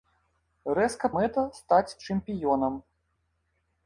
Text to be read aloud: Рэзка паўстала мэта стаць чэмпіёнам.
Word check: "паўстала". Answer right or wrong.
wrong